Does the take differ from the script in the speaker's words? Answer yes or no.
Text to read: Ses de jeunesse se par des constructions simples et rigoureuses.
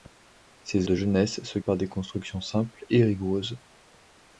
no